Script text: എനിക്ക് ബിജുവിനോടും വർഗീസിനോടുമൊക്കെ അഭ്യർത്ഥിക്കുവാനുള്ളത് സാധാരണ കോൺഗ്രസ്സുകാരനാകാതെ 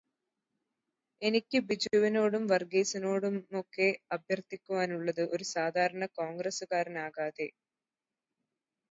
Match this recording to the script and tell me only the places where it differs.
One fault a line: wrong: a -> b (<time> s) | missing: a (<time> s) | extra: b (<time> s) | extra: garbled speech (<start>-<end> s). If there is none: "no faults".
extra: ഒരു (5.3 s)